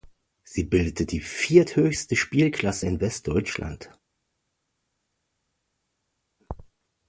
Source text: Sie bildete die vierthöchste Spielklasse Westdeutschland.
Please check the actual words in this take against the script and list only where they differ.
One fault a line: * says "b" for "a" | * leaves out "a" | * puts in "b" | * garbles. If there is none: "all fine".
* puts in "in"